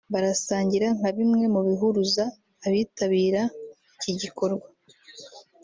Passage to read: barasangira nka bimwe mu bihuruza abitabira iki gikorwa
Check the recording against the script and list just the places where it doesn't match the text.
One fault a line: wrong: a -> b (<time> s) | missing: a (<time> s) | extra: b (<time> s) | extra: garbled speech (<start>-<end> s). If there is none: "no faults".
no faults